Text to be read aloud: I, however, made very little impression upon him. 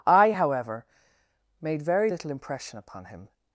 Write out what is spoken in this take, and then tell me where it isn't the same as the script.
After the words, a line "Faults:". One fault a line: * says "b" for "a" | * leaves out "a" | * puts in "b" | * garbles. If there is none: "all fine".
I, however, made very little impression upon him.
Faults:
all fine